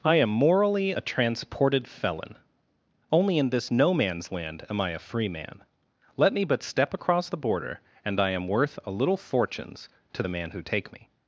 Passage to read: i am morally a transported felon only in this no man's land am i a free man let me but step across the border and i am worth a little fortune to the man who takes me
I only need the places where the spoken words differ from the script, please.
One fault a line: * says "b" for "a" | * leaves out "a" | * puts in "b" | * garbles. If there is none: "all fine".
* says "fortunes" for "fortune"
* says "take" for "takes"